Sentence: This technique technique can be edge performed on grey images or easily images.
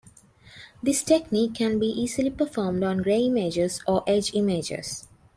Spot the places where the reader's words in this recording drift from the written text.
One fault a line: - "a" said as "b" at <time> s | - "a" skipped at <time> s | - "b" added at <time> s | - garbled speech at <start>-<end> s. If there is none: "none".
- "technique" skipped at 1.5 s
- "edge" said as "easily" at 1.9 s
- "easily" said as "edge" at 4.1 s